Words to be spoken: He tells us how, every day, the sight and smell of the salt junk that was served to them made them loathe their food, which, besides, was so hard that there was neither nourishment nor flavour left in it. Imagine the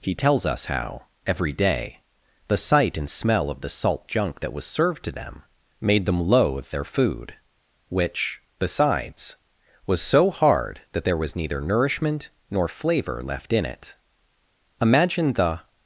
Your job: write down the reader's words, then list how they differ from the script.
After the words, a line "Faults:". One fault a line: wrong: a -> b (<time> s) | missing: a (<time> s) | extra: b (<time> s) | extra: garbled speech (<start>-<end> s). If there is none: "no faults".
He tells us how, every day, the sight and smell of the salt junk that was served to them made them loathe their food, which, besides, was so hard that there was neither nourishment nor flavour left in it. Imagine the
Faults:
no faults